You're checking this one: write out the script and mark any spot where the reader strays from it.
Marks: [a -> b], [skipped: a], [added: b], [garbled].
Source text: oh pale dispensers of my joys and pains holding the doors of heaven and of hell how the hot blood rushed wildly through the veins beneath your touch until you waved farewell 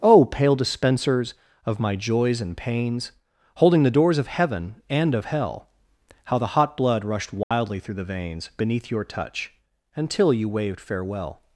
oh pale dispensers of my joys and pains holding the doors of heaven and of hell how the hot blood rushed wildly through the veins beneath your touch until you waved farewell